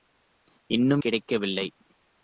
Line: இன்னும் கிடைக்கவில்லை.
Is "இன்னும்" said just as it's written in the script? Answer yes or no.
yes